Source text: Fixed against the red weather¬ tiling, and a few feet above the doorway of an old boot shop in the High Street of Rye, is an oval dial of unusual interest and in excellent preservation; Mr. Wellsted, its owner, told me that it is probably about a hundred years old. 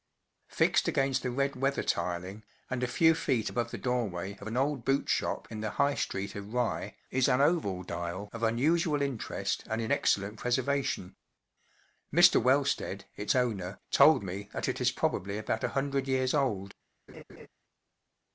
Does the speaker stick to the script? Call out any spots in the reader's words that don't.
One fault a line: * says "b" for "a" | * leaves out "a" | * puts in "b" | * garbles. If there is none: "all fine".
all fine